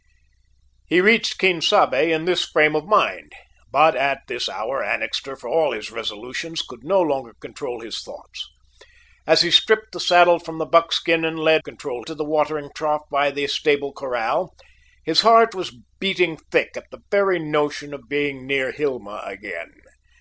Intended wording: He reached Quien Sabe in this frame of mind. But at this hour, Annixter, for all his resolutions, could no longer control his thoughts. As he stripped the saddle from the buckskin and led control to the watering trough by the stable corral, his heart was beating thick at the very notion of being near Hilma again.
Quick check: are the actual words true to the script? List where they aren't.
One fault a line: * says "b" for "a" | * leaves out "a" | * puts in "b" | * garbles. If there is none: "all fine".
all fine